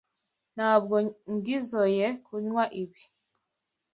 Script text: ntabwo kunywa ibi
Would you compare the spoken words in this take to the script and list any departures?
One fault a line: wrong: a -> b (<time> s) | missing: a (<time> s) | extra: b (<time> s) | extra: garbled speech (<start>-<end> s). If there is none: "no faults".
extra: ngizoe (1.3 s)